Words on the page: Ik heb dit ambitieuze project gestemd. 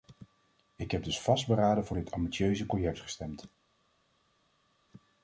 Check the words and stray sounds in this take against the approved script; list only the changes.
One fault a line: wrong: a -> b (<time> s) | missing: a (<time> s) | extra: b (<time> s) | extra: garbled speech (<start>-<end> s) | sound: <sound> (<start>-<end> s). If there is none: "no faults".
extra: dus vastberaden voor (1.0 s)